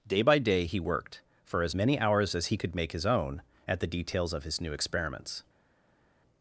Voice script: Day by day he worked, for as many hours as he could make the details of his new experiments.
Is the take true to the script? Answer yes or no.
no